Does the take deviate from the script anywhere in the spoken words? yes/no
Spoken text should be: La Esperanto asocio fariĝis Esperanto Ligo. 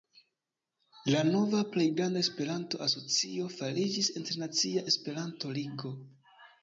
yes